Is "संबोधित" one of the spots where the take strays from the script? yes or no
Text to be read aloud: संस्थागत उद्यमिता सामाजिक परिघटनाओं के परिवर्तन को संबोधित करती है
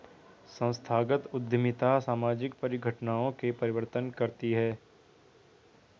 yes